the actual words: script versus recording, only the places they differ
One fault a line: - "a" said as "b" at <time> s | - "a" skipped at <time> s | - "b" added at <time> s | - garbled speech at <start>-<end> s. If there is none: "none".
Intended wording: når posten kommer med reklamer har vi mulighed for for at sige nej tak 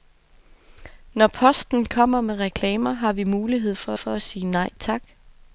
none